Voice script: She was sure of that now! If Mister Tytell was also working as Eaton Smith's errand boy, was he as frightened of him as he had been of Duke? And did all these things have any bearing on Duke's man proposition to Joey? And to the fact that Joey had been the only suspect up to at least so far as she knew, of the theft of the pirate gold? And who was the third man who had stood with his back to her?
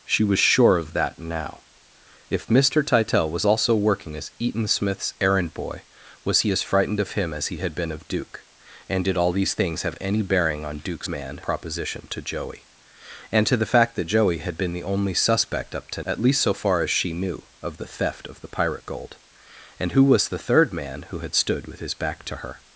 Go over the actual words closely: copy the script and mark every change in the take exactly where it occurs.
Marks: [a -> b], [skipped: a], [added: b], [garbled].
She was sure of that now! If Mister Tytell was also working as Eaton Smith's errand boy, was he as frightened of him as he had been of Duke? And did all these things have any bearing on Duke's man proposition to Joey? And to the fact that Joey had been the only suspect up to at least so far as she knew, of the theft of the pirate gold? And who was the third man who had stood with his back to her?